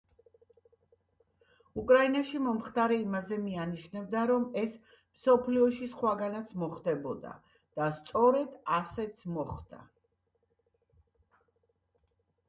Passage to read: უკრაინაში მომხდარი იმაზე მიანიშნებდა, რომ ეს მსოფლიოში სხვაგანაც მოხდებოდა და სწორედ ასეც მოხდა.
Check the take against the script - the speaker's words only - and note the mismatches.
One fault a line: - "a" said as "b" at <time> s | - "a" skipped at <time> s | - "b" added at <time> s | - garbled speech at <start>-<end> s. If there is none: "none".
none